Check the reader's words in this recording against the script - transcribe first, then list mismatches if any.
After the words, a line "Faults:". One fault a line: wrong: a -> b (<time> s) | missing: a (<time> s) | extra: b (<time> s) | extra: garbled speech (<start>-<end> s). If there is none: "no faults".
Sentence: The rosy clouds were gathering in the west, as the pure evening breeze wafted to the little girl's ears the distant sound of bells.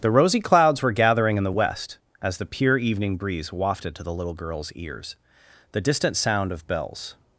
The rosy clouds were gathering in the west, as the pure evening breeze wafted to the little girl's ears the distant sound of bells.
Faults:
no faults